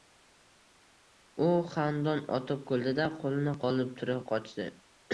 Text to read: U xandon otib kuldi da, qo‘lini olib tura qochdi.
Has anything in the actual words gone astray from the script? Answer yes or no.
no